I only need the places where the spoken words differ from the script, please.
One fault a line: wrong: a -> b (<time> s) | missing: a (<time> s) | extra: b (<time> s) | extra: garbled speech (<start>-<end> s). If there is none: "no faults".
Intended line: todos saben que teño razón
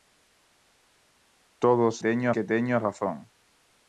wrong: saben -> teño (2.0 s)